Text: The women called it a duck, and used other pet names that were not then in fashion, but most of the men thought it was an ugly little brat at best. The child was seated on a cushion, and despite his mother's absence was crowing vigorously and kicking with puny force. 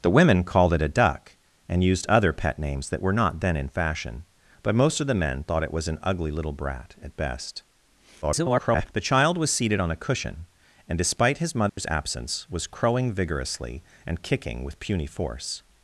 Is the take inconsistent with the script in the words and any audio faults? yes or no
yes